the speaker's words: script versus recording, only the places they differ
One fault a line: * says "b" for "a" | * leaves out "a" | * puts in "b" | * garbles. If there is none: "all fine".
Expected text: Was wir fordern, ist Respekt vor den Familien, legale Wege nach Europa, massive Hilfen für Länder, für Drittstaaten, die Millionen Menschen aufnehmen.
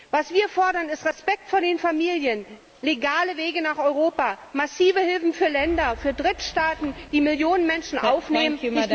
all fine